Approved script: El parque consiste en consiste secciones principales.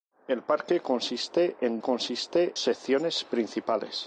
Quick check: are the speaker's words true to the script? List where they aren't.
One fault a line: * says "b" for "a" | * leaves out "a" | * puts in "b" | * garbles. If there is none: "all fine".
all fine